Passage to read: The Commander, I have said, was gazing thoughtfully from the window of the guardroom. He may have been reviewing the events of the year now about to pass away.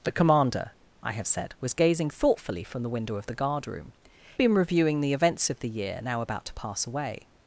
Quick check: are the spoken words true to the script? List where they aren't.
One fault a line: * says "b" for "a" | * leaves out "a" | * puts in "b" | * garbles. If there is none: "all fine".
* leaves out "He may have"